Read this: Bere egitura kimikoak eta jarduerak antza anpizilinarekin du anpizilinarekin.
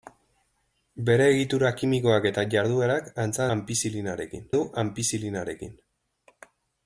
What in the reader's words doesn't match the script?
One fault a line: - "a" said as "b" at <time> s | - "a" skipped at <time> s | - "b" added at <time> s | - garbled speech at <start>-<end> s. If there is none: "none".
none